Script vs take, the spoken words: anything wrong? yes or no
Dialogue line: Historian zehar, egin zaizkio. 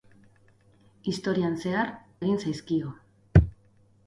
no